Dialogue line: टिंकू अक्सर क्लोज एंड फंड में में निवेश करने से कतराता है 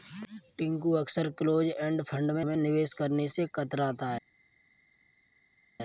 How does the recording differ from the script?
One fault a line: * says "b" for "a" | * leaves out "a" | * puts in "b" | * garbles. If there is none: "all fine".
all fine